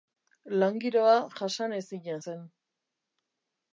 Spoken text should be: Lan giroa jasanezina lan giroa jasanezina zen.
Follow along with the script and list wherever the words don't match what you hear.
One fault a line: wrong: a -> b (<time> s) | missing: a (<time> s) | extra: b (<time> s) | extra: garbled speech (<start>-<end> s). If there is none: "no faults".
missing: lan giroa jasanezina (2.2 s)